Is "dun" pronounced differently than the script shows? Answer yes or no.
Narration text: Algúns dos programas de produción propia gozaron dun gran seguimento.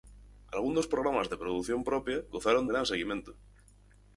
yes